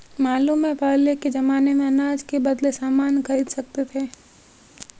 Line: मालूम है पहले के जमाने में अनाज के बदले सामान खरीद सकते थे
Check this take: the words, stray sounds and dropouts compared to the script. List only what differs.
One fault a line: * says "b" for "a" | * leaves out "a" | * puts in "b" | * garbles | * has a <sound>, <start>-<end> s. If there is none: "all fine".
all fine